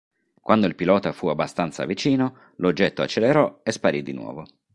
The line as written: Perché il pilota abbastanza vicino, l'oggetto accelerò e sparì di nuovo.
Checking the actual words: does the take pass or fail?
fail